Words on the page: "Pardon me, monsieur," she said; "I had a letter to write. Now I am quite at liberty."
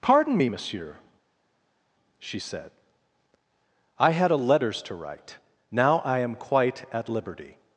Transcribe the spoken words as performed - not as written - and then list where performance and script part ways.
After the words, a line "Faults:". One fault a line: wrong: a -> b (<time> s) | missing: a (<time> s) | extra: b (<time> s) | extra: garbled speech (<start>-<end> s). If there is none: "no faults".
"Pardon me, monsieur," she said; "I had a letters to write. Now I am quite at liberty."
Faults:
wrong: letter -> letters (4.4 s)